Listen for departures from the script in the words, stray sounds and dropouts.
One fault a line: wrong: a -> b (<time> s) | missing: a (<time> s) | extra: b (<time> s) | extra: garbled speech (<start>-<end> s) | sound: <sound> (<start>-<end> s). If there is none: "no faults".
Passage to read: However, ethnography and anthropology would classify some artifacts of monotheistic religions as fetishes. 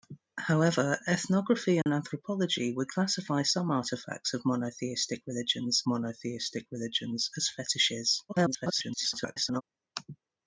sound: dropout (1.8-1.9 s)
extra: monotheistic religions (5.9 s)
extra: garbled speech (8.3-9.6 s)